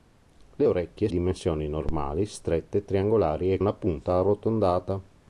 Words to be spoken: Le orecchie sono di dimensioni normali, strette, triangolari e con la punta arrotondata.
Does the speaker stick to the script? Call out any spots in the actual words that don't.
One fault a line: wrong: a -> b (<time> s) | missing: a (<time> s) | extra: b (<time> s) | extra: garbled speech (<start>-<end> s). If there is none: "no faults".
missing: sono di (1.1 s)
missing: con (3.6 s)